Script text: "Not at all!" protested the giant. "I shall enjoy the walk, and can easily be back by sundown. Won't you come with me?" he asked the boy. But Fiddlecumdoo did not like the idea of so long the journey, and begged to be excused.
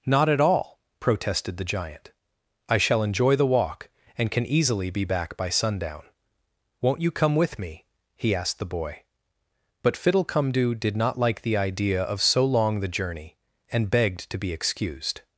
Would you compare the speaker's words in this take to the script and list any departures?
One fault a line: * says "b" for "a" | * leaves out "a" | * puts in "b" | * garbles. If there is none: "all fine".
all fine